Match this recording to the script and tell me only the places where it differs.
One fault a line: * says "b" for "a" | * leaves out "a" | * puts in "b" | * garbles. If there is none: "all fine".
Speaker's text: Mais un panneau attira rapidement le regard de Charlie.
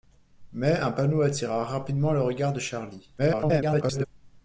* garbles